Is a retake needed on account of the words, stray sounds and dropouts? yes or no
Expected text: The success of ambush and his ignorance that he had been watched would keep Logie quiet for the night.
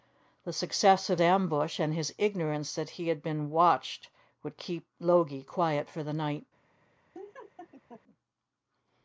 yes